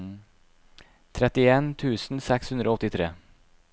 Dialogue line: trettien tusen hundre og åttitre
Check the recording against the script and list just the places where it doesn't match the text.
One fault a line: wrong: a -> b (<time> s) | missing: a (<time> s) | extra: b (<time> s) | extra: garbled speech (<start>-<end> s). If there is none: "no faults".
extra: seks (2.3 s)